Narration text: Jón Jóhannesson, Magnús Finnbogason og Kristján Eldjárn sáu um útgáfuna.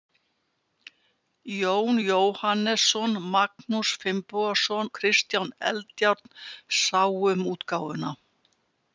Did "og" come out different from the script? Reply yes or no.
yes